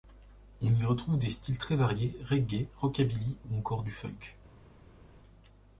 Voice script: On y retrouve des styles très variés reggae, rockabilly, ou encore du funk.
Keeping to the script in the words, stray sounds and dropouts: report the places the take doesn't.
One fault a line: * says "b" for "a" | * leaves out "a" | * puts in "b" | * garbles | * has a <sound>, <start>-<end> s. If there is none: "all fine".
all fine